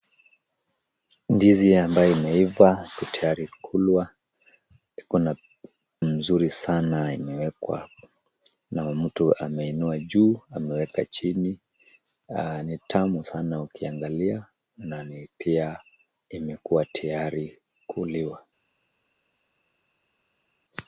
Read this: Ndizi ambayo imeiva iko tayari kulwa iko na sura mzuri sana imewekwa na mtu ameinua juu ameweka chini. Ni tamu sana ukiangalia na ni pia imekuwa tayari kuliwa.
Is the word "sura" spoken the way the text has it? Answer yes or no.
no